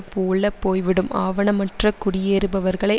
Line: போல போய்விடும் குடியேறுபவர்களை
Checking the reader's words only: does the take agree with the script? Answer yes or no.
no